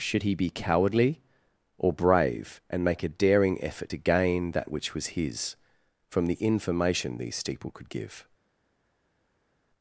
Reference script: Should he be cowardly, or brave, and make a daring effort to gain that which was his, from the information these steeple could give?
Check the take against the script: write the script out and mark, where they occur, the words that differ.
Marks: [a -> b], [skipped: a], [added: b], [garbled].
Should he be cowardly, or brave, and make a daring effort to gain that which was his, from the information these steeple could give?